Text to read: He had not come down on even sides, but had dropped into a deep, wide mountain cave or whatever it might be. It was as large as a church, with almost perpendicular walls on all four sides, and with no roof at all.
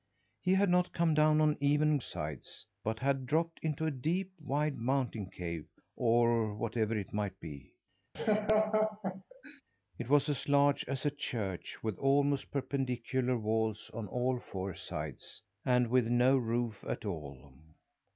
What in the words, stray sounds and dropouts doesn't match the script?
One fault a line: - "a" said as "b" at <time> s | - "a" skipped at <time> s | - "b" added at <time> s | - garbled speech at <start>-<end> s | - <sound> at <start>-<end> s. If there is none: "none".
- laugh at 8.1-9.6 s